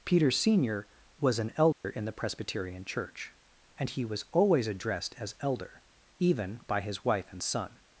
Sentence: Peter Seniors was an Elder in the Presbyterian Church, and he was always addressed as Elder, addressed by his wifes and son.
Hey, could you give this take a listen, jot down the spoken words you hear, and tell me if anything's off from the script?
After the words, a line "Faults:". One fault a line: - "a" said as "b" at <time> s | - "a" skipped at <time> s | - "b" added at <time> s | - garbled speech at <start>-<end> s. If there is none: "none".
Peter Senior was an Elder in the Presbyterian Church, and he was always addressed as Elder, even by his wife and son.
Faults:
- "Seniors" said as "Senior" at 0.3 s
- "addressed" said as "even" at 6.2 s
- "wifes" said as "wife" at 7.0 s